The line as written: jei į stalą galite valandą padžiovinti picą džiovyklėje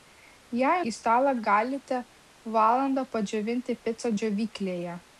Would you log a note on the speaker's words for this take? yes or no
no